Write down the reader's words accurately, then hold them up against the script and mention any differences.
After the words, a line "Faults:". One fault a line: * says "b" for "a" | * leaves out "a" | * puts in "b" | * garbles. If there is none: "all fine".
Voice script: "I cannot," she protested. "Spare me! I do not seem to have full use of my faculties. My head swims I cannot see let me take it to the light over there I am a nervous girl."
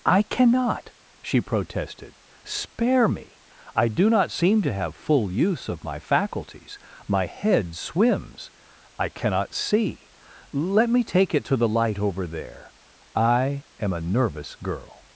"I cannot," she protested. "Spare me! I do not seem to have full use of my faculties. My head swims I cannot see let me take it to the light over there I am a nervous girl."
Faults:
all fine